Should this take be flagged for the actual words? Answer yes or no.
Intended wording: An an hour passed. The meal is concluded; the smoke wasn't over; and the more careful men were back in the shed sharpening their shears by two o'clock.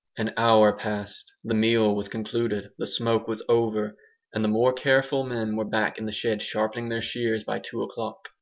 yes